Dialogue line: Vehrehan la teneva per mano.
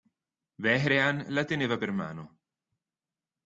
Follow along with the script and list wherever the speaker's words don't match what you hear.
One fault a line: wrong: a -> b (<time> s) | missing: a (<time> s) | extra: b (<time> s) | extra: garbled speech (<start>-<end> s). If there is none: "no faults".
no faults